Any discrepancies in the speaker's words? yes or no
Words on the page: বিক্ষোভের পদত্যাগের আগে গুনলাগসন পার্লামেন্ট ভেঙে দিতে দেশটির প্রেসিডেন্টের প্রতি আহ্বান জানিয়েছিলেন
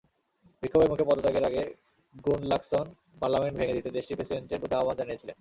yes